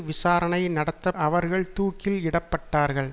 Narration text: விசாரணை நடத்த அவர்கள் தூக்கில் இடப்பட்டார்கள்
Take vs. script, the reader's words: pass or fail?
pass